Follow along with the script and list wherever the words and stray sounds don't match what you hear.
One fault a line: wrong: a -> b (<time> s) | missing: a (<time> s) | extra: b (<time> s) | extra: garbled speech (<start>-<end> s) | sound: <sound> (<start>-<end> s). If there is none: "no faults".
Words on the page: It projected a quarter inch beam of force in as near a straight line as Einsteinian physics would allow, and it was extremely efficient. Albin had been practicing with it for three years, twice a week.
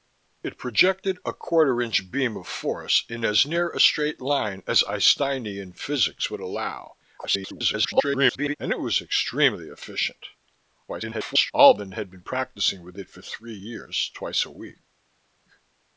extra: garbled speech (7.2-8.6 s)
extra: garbled speech (10.9-11.5 s)